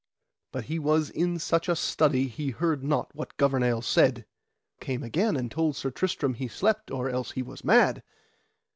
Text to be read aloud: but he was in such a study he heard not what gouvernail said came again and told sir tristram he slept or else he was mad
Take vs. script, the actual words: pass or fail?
pass